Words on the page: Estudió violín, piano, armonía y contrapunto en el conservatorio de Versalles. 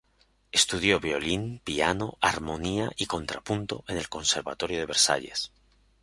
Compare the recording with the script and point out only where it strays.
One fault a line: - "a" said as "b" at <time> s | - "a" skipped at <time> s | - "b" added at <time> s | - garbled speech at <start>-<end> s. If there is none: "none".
none